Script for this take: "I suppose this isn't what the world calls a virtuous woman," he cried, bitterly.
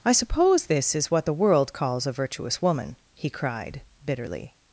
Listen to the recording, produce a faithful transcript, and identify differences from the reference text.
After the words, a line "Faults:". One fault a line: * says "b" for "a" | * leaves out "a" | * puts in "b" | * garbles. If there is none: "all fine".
"I suppose this is what the world calls a virtuous woman," he cried, bitterly.
Faults:
* says "is" for "isn't"